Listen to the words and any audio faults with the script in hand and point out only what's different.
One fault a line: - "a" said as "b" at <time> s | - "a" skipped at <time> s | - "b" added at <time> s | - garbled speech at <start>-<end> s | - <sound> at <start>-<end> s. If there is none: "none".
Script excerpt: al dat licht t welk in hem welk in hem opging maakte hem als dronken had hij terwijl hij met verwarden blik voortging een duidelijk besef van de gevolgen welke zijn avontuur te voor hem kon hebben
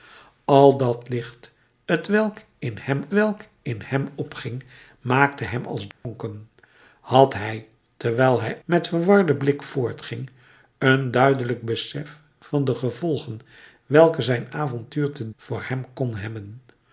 - dropout at 5.9-6.0 s